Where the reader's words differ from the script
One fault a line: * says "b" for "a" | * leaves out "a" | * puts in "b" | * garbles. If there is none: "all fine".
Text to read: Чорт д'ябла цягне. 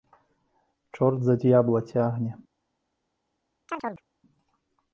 * puts in "за"